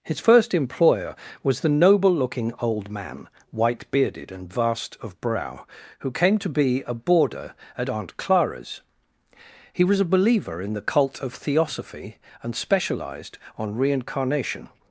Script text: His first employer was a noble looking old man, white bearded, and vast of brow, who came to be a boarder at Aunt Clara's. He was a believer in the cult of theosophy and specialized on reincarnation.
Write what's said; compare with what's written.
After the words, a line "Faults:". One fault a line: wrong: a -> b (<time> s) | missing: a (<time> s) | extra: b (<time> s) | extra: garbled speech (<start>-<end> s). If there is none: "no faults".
His first employer was the noble looking old man, white bearded, and vast of brow, who came to be a boarder at Aunt Clara's. He was a believer in the cult of theosophy and specialized on reincarnation.
Faults:
wrong: a -> the (1.6 s)